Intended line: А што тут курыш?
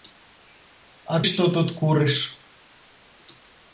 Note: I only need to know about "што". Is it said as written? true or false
true